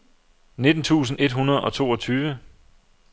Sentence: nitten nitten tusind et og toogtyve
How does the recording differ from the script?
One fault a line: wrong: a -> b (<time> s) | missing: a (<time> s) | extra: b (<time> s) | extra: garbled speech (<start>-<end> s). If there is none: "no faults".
missing: nitten (0.8 s)
extra: hundrede (1.3 s)